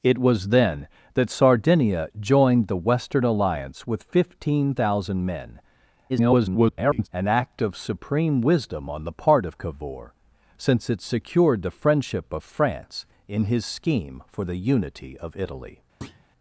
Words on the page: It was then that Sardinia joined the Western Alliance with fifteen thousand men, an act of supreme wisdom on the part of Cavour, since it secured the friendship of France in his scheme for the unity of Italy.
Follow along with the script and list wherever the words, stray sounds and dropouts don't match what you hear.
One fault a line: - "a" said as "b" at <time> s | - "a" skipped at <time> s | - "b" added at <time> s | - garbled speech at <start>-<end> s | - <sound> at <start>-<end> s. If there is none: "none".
- garbled speech at 6.1-7.1 s
- thud at 16.0-16.2 s